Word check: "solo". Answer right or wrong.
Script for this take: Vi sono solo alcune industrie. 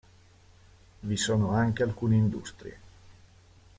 wrong